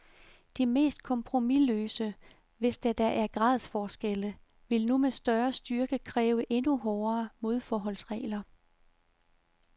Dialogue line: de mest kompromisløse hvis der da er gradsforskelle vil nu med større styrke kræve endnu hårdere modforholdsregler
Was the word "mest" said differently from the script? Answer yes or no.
no